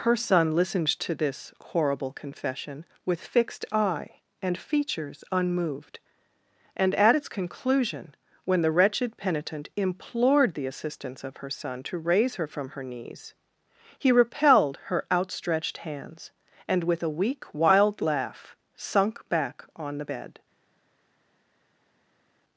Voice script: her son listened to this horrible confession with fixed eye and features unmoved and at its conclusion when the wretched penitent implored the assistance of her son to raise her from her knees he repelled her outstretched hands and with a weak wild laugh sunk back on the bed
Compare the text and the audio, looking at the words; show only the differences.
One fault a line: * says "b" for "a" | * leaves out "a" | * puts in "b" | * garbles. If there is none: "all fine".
all fine